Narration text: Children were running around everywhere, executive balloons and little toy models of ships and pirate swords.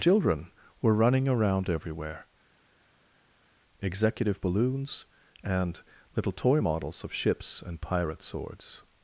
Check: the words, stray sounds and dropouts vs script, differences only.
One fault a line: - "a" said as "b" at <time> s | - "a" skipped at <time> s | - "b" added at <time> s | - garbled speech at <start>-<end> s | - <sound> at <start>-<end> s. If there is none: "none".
none